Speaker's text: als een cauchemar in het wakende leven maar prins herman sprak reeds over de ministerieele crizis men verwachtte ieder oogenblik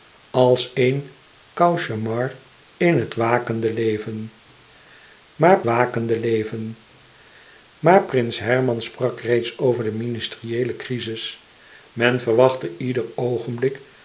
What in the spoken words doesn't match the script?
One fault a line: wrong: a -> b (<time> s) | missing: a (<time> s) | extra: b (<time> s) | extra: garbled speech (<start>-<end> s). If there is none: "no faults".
extra: wakende leven maar (5.6 s)